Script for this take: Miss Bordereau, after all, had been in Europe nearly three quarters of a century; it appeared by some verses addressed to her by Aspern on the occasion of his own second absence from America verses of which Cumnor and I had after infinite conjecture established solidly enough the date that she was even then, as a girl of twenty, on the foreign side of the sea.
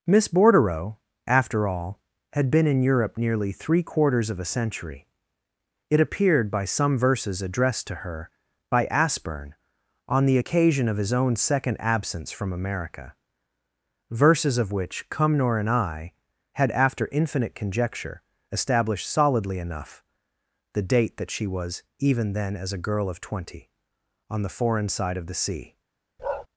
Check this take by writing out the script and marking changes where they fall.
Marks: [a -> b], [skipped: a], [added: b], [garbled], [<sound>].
Miss Bordereau, after all, had been in Europe nearly three quarters of a century; it appeared by some verses addressed to her by Aspern on the occasion of his own second absence from America verses of which Cumnor and I had after infinite conjecture established solidly enough the date that she was even then, as a girl of twenty, on the foreign side of the sea. [bark]